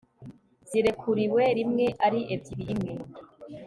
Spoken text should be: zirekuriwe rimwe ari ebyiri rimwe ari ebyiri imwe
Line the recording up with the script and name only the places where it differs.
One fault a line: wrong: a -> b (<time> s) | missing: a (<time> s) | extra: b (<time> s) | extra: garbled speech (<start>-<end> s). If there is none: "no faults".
missing: rimwe ari ebyiri (2.6 s)